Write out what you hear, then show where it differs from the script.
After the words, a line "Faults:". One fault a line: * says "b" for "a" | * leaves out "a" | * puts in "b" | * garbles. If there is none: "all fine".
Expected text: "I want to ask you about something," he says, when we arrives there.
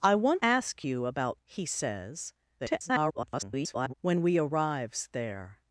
"I want ask you about," he says, [garbled] when we arrives there.
Faults:
* leaves out "to"
* leaves out "something"
* garbles